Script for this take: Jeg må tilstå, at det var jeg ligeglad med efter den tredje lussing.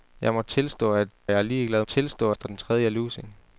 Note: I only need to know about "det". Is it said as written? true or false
false